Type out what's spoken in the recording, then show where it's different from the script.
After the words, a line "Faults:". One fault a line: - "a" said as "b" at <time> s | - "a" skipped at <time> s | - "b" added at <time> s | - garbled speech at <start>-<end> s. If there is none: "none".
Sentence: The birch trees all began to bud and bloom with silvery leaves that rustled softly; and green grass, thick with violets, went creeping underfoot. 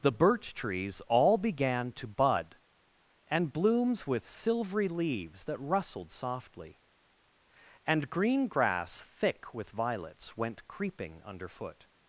The birch trees all began to bud and blooms with silvery leaves that rustled softly; and green grass, thick with violets, went creeping underfoot.
Faults:
- "bloom" said as "blooms" at 3.5 s